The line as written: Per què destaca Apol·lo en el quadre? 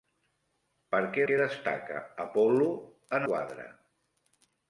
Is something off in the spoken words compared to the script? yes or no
yes